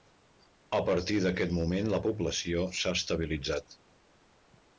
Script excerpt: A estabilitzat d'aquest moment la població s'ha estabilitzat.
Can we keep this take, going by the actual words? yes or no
no